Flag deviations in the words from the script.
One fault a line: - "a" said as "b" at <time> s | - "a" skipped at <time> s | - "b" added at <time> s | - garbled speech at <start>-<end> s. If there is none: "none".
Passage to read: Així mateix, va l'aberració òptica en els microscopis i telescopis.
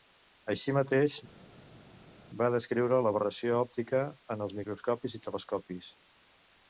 - "descriure" added at 2.5 s